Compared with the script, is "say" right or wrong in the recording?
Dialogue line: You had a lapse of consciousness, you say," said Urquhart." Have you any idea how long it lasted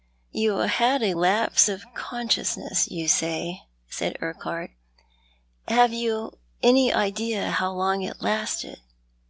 right